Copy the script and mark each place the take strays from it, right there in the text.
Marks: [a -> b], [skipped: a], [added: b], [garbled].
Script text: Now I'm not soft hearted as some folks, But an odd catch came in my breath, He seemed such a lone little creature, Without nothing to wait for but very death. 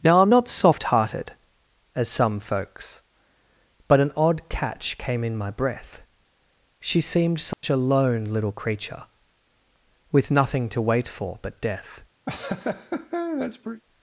Now I'm not soft hearted as some folks, But an odd catch came in my breath, [He -> She] seemed such a lone little creature, [Without -> With] nothing to wait for but [skipped: very] death.